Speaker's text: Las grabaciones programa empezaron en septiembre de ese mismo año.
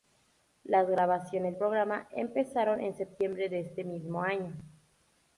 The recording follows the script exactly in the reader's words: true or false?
true